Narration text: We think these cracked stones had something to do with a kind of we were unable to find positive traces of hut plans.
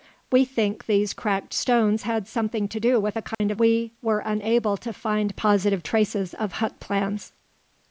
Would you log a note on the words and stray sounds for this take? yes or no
yes